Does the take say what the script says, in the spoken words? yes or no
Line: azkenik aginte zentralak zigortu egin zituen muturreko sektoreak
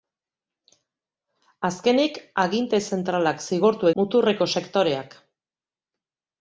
no